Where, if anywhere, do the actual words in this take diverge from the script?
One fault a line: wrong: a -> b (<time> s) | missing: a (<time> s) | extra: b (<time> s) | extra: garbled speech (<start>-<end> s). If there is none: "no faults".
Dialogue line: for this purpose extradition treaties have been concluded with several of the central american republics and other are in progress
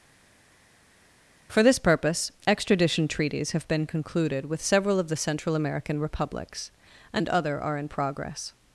no faults